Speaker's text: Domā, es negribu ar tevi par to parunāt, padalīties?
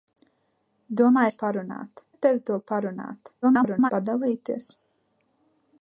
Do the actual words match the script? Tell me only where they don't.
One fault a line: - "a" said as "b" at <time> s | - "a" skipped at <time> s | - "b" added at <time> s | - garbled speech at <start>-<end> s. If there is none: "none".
- "negribu" said as "parunāt" at 1.5 s
- "par" skipped at 2.4 s
- garbled speech at 3.4-3.9 s